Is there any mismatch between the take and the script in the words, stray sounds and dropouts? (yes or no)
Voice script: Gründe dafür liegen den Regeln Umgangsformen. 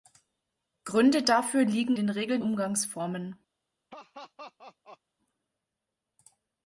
yes